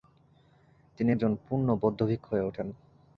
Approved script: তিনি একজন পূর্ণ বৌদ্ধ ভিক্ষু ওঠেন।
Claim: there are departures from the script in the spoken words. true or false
true